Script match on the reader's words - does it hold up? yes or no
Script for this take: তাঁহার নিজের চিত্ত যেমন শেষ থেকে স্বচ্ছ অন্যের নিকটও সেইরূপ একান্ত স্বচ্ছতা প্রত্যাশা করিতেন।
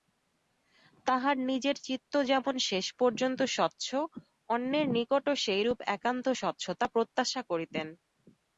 no